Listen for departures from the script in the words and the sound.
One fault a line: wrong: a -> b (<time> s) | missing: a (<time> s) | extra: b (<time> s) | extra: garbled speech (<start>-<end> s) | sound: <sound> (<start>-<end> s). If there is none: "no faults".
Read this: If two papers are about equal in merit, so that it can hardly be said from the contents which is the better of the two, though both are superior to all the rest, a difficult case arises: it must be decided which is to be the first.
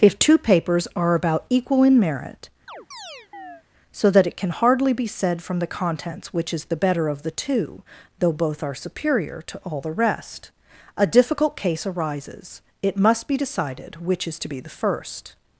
sound: chirp (2.7-3.6 s)